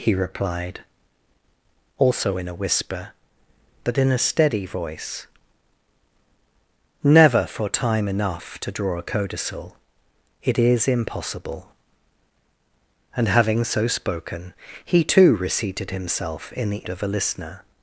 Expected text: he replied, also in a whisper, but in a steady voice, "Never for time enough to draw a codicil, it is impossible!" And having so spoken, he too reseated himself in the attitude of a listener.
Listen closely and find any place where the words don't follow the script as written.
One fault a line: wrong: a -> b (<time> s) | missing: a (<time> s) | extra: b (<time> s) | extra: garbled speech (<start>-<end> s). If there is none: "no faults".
missing: attitude (16.9 s)